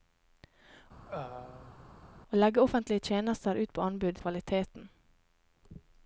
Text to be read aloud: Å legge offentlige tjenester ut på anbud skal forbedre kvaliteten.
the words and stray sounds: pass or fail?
fail